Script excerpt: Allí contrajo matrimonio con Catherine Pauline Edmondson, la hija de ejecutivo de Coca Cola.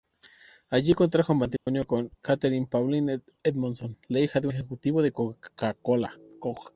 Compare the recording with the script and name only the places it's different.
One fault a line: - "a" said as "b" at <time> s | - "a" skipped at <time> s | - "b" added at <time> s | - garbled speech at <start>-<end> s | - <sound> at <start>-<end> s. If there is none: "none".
- dropout at 1.6-1.7 s